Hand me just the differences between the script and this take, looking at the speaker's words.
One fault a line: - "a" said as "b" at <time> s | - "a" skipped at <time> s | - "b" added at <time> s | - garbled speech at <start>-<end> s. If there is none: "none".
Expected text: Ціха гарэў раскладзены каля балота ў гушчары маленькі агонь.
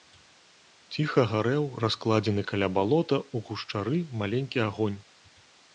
none